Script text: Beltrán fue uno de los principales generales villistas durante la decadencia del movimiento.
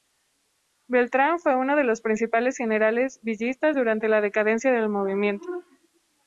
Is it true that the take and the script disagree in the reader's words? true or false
false